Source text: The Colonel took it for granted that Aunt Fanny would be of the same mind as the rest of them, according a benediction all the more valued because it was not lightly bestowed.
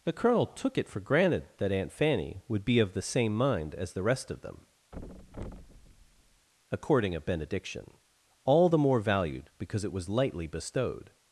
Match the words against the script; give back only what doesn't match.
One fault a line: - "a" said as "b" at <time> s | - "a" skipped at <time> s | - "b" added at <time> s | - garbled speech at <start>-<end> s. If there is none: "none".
- "not" skipped at 10.1 s